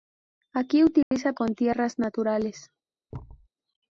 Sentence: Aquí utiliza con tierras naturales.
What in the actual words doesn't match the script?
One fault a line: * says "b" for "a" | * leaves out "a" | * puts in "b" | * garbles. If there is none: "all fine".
all fine